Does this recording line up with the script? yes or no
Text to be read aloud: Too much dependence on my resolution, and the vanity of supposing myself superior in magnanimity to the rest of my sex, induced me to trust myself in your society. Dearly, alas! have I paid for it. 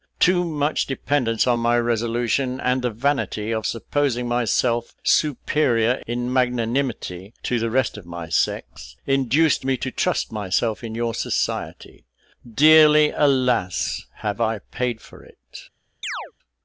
yes